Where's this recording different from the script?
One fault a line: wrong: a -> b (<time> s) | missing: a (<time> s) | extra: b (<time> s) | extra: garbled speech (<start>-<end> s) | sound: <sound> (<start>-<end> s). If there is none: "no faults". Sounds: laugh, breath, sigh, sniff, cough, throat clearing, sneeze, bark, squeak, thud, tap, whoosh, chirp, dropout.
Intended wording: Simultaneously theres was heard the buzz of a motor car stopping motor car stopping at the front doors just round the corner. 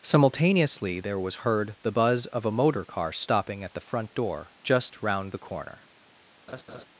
wrong: theres -> there (1.0 s)
missing: motor car stopping (3.6 s)
wrong: doors -> door (4.1 s)
sound: laugh (6.5-6.9 s)